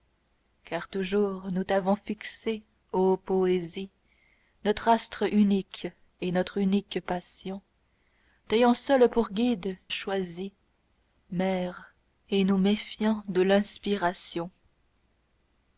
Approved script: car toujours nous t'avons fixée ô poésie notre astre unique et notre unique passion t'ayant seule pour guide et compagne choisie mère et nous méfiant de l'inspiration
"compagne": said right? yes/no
no